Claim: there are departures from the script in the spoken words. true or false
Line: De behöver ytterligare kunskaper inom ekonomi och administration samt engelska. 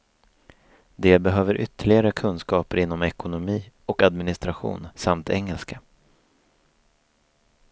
false